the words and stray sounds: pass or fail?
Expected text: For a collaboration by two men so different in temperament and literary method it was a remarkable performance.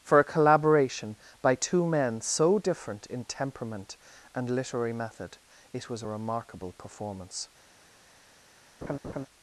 fail